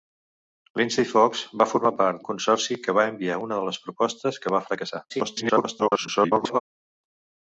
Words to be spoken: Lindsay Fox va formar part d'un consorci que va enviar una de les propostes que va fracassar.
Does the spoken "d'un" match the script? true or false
false